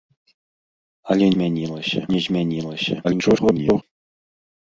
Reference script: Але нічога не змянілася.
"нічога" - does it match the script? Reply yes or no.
no